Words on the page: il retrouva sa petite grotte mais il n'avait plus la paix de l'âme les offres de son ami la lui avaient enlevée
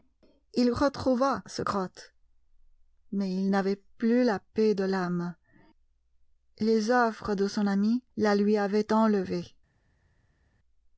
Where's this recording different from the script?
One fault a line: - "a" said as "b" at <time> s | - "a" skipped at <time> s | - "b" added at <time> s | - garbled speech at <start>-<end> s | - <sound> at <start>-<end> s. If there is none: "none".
- "petite" skipped at 1.6 s